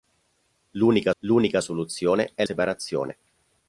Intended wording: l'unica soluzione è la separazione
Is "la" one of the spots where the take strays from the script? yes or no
yes